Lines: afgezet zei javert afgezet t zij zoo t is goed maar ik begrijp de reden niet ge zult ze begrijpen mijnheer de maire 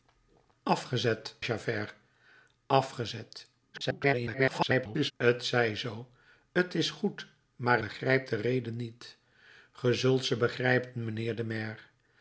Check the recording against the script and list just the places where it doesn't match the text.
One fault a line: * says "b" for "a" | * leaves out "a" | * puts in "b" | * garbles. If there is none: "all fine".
* leaves out "zei"
* garbles
* leaves out "ik"